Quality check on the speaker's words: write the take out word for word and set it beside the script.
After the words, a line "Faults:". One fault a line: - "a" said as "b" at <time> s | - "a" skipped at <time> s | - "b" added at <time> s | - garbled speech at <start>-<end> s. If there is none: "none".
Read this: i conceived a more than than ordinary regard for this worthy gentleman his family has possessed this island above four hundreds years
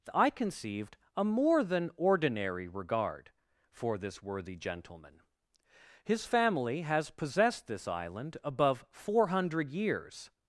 i conceived a more than ordinary regard for this worthy gentleman his family has possessed this island above four hundred years
Faults:
- "than" skipped at 1.9 s
- "hundreds" said as "hundred" at 9.3 s